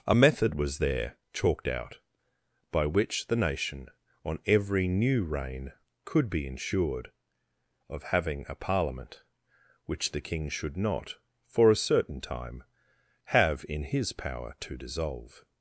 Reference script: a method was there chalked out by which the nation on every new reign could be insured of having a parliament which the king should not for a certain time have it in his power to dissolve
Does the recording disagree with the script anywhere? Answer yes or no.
yes